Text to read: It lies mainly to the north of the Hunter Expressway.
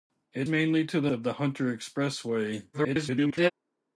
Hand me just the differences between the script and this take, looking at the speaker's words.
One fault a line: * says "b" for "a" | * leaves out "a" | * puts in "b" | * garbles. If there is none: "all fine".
* leaves out "lies"
* leaves out "north"
* garbles